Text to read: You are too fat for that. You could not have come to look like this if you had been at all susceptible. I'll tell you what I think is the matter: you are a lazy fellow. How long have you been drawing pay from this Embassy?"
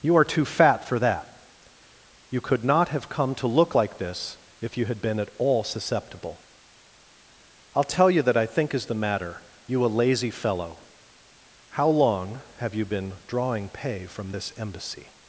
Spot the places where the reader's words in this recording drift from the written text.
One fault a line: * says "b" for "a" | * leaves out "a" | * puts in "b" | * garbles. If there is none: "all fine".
* says "that" for "what"
* leaves out "are"